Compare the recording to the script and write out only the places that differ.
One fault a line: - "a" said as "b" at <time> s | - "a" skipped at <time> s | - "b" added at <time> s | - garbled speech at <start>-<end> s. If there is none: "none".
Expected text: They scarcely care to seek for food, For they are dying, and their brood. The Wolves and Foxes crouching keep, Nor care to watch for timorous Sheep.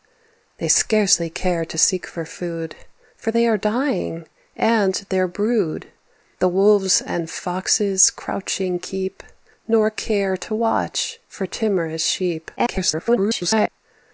- garbled speech at 12.6-13.7 s